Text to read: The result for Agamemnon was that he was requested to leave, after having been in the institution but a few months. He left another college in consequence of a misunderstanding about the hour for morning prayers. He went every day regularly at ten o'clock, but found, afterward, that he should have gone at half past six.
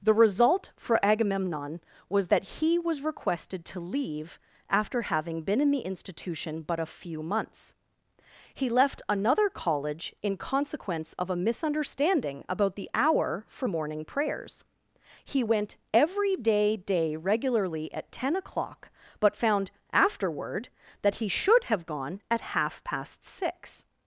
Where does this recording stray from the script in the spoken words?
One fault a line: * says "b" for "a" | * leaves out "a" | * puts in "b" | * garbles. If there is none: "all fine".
* puts in "day"